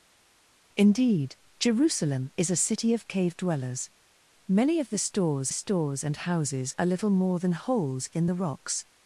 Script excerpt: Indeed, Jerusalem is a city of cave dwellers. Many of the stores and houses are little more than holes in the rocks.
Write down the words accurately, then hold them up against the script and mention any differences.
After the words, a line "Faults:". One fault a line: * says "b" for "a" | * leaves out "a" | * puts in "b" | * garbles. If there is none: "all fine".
Indeed, Jerusalem is a city of cave dwellers. Many of the stores stores and houses are little more than holes in the rocks.
Faults:
* puts in "stores"